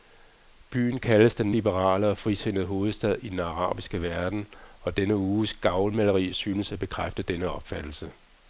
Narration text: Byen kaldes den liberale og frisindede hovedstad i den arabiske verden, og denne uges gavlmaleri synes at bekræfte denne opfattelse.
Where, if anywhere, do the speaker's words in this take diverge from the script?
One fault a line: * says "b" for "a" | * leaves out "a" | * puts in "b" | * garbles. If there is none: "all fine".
all fine